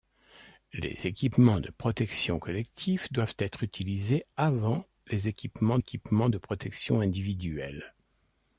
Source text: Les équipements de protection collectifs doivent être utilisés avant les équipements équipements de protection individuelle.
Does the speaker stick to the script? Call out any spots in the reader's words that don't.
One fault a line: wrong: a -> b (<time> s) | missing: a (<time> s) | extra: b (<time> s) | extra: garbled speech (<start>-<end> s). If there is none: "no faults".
no faults